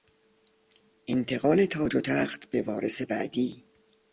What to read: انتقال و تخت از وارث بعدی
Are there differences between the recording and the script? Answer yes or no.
yes